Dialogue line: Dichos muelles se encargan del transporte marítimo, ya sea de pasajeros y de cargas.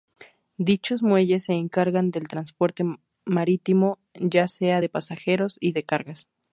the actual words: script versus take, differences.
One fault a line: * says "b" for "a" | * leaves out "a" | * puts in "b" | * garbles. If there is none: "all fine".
all fine